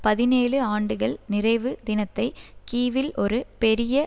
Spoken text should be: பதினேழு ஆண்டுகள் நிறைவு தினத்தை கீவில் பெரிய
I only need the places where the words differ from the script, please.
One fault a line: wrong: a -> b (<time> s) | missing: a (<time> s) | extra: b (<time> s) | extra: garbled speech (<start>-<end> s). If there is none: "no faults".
extra: ஒரு (3.2 s)